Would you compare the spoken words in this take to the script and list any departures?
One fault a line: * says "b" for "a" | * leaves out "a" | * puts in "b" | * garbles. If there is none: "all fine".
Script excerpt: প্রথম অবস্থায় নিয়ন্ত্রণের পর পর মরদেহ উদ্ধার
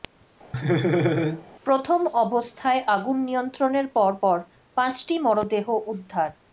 * puts in "আগুন"
* puts in "পাঁচটি"